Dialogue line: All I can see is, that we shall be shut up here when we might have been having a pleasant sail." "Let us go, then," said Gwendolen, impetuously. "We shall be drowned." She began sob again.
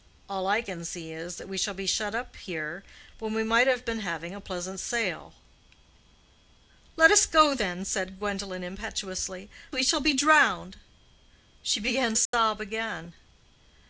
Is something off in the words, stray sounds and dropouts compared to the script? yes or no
yes